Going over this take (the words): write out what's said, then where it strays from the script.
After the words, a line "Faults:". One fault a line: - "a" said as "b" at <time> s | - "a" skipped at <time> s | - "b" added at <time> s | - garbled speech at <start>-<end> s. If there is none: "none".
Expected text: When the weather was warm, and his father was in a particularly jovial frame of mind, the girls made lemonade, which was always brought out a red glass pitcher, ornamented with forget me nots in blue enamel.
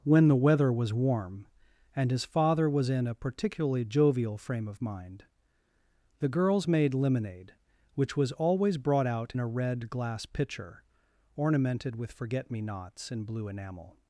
When the weather was warm, and his father was in a particularly jovial frame of mind, the girls made lemonade, which was always brought out a red glass pitcher, ornamented with forget me nots in blue enamel.
Faults:
none